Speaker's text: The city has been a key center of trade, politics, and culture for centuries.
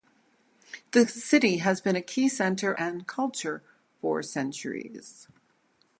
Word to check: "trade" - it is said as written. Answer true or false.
false